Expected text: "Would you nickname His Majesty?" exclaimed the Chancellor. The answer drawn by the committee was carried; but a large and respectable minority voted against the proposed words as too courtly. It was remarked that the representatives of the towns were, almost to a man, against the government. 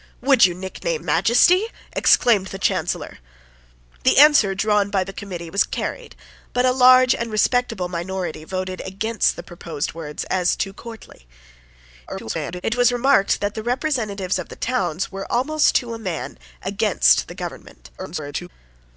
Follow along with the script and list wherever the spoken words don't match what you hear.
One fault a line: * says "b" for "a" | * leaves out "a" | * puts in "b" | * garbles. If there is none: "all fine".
* leaves out "His"
* garbles
* garbles